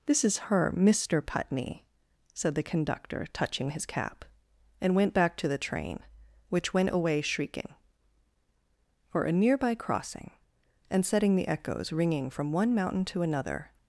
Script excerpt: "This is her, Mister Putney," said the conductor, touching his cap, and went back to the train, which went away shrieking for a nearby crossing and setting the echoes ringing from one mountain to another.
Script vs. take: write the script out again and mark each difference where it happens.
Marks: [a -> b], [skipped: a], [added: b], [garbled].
"This is her, Mister Putney," said the conductor, touching his cap, and went back to the train, which went away shrieking for a nearby crossing and setting the echoes ringing from one mountain to another.